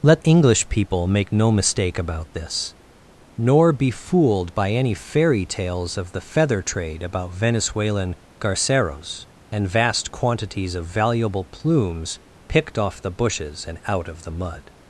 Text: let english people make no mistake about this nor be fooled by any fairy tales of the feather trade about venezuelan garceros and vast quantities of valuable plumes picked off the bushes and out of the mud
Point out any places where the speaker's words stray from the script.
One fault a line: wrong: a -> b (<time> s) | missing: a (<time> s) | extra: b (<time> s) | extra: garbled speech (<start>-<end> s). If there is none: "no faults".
no faults